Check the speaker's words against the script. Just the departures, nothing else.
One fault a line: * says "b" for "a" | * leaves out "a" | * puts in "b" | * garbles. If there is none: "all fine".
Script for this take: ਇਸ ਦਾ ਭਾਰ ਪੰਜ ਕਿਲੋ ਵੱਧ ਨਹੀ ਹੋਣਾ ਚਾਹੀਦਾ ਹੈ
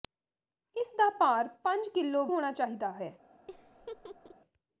* leaves out "ਵੱਧ ਨਹੀ"